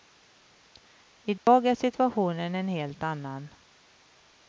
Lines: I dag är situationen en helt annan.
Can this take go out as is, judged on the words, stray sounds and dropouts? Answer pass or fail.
fail